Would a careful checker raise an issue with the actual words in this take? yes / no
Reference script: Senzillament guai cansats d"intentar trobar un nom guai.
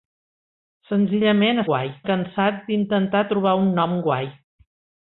no